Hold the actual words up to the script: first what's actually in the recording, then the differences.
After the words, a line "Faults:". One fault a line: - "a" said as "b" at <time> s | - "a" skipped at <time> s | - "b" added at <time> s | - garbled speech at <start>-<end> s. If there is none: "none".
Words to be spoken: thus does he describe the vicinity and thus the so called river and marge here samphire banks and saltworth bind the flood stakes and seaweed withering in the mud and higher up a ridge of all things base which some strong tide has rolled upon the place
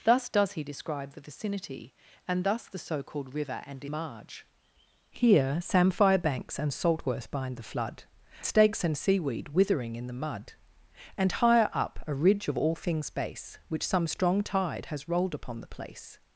thus does he describe the vicinity and thus the so called river and marge here samphire banks and saltworth bind the flood stakes and seaweed withering in the mud and higher up a ridge of all things base which some strong tide has rolled upon the place
Faults:
none